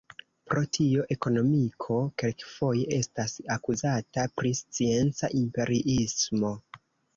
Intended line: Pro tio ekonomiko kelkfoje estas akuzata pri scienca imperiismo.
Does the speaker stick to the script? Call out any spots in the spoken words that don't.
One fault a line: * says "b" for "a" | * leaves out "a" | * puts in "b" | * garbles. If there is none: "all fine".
all fine